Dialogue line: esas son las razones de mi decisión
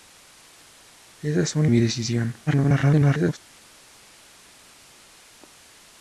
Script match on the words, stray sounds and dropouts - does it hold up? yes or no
no